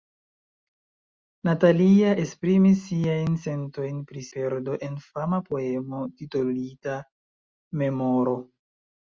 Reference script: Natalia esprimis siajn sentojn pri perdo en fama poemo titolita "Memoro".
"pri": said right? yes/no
yes